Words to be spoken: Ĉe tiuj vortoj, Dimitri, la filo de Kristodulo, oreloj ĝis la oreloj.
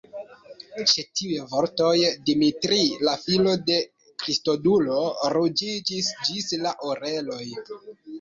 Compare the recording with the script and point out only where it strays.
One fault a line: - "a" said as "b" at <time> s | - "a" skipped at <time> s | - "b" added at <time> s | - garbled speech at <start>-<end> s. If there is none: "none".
- "oreloj" said as "ruĝiĝis" at 5.3 s